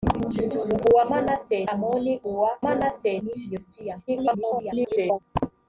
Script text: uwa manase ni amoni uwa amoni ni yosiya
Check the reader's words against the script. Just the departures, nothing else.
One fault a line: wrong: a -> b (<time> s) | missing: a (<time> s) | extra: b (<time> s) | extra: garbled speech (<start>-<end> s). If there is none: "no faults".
missing: ni (1.6 s)
wrong: amoni -> manase (2.6 s)
extra: garbled speech (4.1-5.2 s)